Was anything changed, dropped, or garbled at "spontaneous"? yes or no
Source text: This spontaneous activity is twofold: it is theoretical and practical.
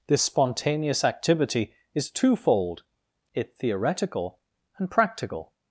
no